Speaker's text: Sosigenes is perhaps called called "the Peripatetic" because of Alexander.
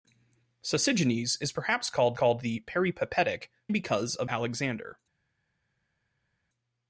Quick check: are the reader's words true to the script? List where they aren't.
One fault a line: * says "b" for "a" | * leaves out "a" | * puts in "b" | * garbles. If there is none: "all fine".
all fine